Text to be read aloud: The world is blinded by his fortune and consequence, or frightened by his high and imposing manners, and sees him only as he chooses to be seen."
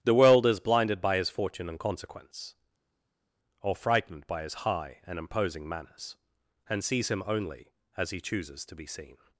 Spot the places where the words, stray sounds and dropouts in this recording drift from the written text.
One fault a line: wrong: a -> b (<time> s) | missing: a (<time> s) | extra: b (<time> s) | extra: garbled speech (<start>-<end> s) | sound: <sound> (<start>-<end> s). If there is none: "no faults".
no faults